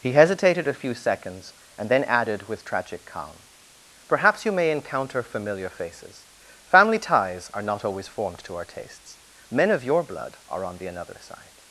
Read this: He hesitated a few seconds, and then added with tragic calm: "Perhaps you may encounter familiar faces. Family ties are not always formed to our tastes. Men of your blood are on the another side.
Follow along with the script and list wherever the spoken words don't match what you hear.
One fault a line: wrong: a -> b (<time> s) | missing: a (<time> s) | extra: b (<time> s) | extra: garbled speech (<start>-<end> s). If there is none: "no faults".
no faults